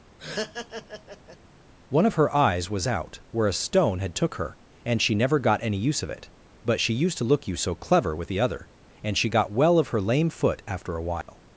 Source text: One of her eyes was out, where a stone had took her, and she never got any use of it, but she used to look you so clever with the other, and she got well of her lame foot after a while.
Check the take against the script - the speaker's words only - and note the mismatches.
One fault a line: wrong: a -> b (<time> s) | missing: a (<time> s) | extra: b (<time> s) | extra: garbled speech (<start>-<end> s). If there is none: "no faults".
no faults